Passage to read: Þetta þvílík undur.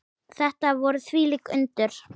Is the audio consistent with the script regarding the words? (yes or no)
no